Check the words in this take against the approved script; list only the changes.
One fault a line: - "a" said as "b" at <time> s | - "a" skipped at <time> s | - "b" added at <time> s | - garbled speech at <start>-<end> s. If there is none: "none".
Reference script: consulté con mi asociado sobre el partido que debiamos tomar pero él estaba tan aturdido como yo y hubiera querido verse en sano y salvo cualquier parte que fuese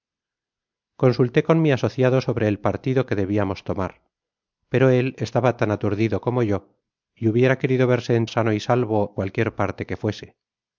none